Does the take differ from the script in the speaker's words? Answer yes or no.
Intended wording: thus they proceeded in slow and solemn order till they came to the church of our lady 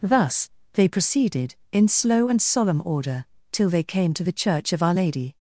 no